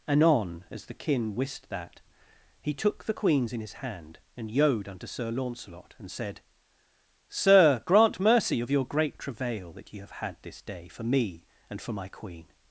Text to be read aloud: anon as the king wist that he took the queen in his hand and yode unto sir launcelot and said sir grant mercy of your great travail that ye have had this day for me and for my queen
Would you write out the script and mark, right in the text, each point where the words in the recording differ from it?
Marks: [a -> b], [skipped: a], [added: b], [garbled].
anon as the [king -> kin] wist that he took the [queen -> queens] in his hand and yode unto sir launcelot and said sir grant mercy of your great travail that ye have had this day for me and for my queen